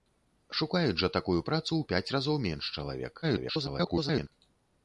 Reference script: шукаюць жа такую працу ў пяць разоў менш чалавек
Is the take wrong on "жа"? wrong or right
right